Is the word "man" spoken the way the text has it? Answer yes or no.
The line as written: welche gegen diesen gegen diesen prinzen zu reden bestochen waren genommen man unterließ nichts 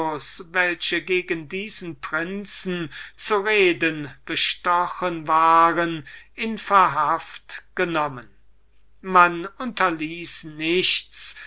yes